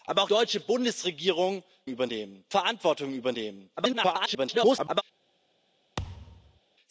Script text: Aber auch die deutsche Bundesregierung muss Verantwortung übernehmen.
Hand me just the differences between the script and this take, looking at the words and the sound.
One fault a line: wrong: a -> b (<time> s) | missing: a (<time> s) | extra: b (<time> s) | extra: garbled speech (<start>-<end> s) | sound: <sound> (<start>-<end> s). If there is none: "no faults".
missing: die (0.3 s)
wrong: muss -> übernehmen (1.9 s)
extra: garbled speech (3.8-5.0 s)
sound: thud (6.0-6.6 s)